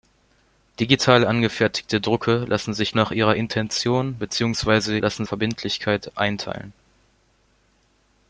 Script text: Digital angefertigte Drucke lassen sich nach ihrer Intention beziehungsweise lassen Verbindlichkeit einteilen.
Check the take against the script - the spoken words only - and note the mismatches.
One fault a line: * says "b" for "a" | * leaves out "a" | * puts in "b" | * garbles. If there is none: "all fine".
all fine